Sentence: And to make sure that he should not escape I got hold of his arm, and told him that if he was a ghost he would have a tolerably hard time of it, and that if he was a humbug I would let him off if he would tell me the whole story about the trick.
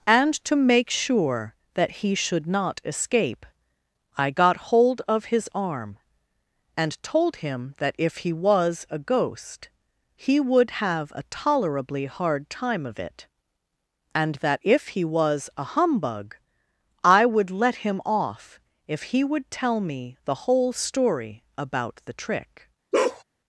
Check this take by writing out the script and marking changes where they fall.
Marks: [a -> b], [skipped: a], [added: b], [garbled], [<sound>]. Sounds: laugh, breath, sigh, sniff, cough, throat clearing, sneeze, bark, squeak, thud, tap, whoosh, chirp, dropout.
And to make sure that he should not escape I got hold of his arm, and told him that if he was a ghost he would have a tolerably hard time of it, and that if he was a humbug I would let him off if he would tell me the whole story about the trick. [bark]